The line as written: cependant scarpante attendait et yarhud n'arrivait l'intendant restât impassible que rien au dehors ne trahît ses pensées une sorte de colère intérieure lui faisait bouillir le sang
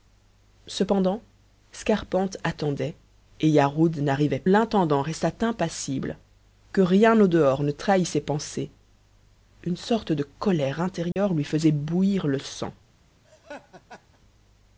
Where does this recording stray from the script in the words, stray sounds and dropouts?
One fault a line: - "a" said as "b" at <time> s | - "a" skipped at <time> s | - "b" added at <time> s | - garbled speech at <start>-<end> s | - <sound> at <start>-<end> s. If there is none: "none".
- dropout at 11.1-11.2 s
- laugh at 13.2-14.2 s